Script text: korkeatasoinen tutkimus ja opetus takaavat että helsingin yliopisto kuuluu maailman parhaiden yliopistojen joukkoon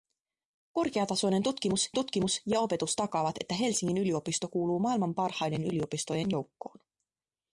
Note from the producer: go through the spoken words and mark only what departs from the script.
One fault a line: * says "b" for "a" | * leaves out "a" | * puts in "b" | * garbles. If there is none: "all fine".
* puts in "tutkimus"